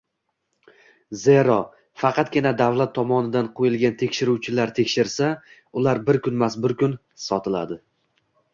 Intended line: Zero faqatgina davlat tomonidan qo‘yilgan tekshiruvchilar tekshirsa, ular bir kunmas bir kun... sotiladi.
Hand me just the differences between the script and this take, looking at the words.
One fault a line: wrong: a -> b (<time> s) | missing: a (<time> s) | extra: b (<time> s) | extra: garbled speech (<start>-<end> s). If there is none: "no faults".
no faults